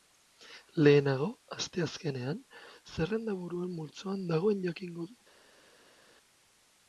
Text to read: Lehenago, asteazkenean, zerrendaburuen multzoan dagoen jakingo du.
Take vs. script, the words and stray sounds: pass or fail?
pass